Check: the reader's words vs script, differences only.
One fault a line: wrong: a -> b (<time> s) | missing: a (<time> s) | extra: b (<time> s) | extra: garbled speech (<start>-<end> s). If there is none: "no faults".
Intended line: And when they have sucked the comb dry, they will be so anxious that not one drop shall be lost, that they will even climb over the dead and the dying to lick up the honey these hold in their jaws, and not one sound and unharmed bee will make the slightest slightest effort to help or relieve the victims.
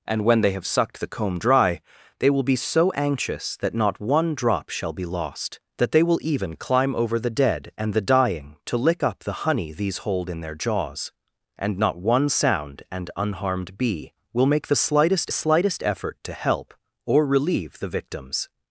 no faults